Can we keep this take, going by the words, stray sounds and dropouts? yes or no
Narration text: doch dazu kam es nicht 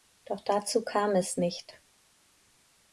yes